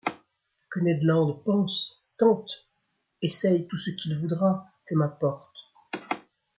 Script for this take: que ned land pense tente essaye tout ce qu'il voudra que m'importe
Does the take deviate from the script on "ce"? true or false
false